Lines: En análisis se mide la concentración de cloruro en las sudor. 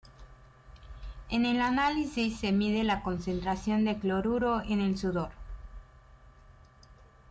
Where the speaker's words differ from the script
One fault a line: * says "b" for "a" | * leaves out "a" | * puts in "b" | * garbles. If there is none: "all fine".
* puts in "el"
* says "el" for "las"